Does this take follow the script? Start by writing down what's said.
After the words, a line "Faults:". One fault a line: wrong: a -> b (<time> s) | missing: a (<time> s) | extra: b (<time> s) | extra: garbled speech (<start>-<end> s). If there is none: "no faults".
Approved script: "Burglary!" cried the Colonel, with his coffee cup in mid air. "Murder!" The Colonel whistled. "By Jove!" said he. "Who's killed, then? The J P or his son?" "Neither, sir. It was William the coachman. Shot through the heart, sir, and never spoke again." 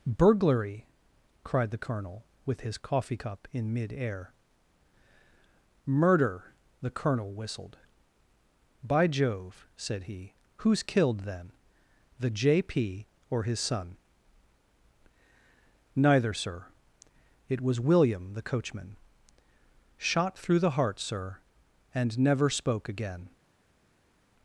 "Burglary!" cried the Colonel, with his coffee cup in mid air. "Murder!" The Colonel whistled. "By Jove!" said he. "Who's killed, then? The J P or his son?" "Neither, sir. It was William the coachman. Shot through the heart, sir, and never spoke again."
Faults:
no faults